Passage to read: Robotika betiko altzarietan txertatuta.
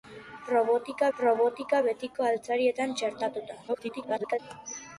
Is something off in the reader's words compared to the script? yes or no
yes